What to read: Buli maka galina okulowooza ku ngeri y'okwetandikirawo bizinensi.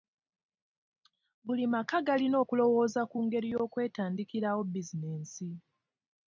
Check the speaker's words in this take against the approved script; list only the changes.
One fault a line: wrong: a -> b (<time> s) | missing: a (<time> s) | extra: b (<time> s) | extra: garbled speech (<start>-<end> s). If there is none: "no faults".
no faults